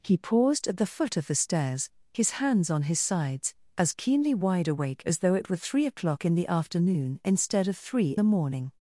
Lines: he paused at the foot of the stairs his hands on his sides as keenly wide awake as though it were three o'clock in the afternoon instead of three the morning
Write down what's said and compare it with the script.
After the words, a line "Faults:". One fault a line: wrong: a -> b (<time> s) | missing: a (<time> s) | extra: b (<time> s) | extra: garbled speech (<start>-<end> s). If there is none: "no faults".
he paused at the foot of the stairs his hands on his sides as keenly wide awake as though it were three o'clock in the afternoon instead of three the morning
Faults:
no faults